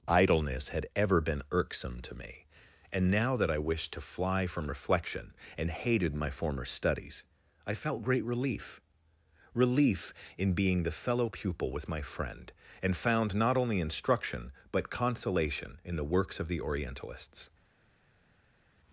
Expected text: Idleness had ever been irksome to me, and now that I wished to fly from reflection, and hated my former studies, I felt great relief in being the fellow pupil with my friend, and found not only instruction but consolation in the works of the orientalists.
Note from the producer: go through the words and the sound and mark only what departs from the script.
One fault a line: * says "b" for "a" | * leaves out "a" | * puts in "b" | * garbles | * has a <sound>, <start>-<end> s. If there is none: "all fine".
* puts in "relief"